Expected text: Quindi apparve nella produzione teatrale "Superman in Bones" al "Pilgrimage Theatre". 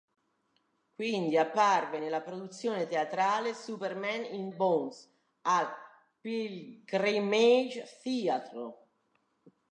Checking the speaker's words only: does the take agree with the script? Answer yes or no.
yes